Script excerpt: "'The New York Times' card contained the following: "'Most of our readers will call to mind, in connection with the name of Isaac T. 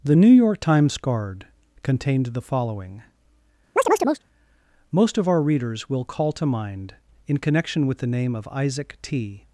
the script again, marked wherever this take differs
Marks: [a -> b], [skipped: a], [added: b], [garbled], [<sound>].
"'The New York Times' card contained the following: [chirp] "'Most of our readers will call to mind, in connection with the name of Isaac T.